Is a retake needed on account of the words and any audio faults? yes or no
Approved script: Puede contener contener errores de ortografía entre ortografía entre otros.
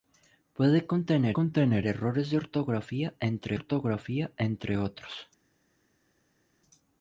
no